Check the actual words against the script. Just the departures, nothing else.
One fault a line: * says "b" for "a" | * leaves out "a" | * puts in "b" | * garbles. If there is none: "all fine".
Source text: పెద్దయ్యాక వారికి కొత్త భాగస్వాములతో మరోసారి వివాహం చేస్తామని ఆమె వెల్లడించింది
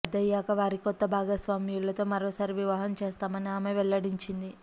all fine